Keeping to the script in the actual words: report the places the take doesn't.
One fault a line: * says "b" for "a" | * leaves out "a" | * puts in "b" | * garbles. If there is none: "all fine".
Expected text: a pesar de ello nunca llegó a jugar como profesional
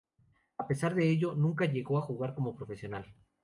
all fine